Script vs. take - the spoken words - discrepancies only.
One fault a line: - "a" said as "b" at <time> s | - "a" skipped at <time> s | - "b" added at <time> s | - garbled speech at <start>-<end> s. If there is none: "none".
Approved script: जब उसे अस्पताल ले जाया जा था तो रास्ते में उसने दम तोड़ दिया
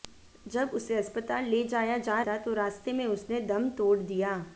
none